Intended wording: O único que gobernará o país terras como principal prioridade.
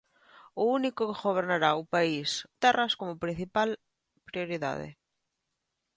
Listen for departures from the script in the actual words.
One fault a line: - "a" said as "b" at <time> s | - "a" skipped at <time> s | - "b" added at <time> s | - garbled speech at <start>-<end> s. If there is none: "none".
none